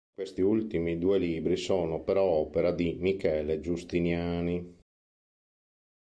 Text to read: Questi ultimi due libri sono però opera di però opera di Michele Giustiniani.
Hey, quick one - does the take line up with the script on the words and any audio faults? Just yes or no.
no